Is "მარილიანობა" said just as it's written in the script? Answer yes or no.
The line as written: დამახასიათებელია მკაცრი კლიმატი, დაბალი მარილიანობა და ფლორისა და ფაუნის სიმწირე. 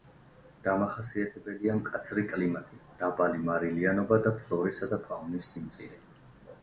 yes